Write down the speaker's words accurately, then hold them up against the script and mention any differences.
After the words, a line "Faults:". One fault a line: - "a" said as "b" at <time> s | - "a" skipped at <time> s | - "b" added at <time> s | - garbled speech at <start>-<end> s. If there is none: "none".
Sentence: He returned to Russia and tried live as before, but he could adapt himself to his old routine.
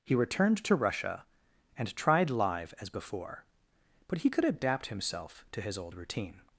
He returned to Russia and tried live as before, but he could adapt himself to his old routine.
Faults:
none